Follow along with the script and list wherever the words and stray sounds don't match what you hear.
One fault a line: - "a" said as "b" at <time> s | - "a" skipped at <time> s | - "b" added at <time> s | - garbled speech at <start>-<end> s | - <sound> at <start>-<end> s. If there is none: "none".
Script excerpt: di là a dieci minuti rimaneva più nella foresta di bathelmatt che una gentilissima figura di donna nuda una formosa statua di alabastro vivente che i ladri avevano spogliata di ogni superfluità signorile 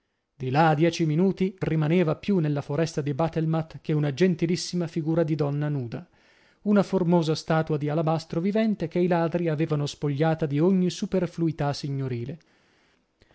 none